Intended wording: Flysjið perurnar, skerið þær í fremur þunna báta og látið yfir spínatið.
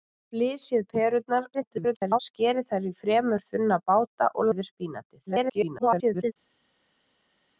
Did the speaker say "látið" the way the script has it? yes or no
no